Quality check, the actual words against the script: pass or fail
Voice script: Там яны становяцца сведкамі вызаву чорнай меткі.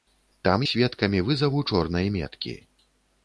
fail